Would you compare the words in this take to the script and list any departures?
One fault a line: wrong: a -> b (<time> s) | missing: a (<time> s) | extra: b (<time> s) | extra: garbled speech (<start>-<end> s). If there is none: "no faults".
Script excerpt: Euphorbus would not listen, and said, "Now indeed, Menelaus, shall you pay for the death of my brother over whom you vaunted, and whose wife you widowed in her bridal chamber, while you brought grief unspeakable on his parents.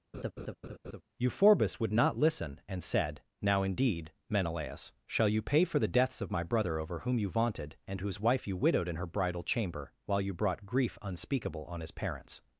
wrong: death -> deaths (5.9 s)